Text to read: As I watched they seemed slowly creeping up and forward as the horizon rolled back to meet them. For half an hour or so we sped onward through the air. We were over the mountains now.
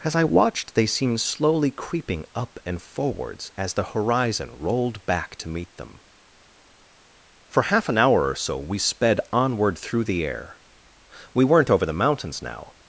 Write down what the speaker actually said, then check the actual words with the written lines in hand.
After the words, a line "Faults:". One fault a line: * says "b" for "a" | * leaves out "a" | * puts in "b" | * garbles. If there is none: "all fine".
As I watched they seemed slowly creeping up and forwards as the horizon rolled back to meet them. For half an hour or so we sped onward through the air. We weren't over the mountains now.
Faults:
* says "forwards" for "forward"
* says "weren't" for "were"